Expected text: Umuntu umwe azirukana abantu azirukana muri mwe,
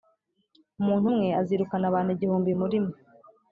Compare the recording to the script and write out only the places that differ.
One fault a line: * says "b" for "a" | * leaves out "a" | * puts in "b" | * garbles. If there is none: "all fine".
* says "igihumbi" for "azirukana"